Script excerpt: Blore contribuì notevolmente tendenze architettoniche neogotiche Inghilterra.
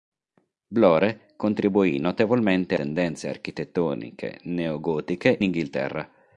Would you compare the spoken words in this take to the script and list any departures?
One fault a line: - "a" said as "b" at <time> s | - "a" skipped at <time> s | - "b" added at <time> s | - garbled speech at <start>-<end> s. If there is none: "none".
none